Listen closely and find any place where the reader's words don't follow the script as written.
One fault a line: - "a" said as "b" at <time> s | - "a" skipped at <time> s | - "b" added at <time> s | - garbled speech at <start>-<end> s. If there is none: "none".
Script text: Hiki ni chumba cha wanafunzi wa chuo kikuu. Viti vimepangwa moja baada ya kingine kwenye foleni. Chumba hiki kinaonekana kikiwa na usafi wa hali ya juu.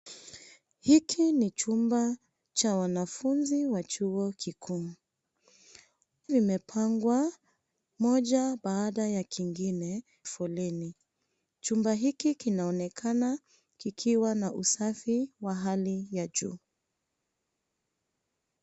- "Viti" skipped at 4.9 s
- "kwenye" skipped at 10.0 s